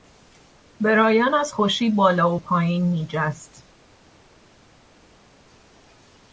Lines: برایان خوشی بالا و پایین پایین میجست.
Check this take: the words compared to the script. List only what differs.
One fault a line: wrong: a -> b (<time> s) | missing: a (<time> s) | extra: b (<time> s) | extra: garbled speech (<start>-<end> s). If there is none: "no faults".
extra: از (1.3 s)
missing: پایین (2.9 s)